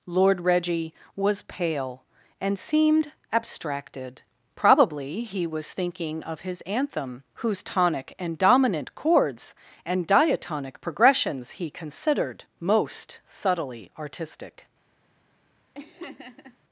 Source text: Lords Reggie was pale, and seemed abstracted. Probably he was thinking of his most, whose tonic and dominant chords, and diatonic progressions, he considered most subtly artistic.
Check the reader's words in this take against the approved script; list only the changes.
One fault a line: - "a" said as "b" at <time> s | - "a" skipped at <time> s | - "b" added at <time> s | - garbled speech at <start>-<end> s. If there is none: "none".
- "Lords" said as "Lord" at 0.1 s
- "most" said as "anthem" at 6.6 s